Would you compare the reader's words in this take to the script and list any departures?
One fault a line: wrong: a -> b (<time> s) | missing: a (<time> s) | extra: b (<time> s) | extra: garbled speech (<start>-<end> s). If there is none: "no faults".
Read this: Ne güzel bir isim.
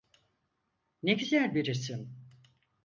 no faults